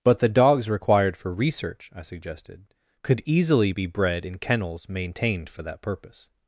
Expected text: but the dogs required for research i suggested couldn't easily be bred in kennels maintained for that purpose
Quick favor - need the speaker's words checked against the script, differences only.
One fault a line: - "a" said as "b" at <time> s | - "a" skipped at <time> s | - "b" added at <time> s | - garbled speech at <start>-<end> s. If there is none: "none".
- "couldn't" said as "could" at 3.0 s